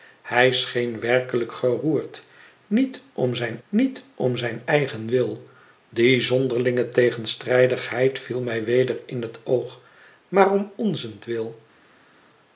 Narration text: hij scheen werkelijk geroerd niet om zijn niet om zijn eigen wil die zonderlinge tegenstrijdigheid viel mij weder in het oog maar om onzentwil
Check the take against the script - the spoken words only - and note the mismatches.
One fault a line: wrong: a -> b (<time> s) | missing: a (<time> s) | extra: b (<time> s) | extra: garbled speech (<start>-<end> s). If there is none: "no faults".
no faults